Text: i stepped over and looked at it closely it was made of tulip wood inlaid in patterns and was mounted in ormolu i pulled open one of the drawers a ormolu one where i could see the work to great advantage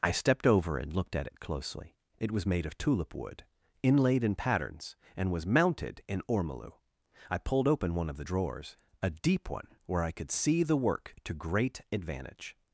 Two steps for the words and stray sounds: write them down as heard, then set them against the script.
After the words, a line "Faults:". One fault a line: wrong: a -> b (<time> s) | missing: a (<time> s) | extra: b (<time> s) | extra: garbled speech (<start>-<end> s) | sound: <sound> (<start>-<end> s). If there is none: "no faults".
i stepped over and looked at it closely it was made of tulip wood inlaid in patterns and was mounted in ormolu i pulled open one of the drawers a deep one where i could see the work to great advantage
Faults:
wrong: ormolu -> deep (9.1 s)